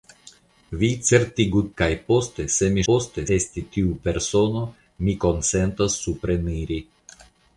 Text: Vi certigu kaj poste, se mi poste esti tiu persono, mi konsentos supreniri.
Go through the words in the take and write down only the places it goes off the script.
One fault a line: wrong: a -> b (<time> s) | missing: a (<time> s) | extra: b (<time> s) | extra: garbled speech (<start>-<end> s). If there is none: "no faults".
no faults